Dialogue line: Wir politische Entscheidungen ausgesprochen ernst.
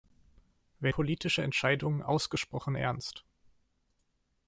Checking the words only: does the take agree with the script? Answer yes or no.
yes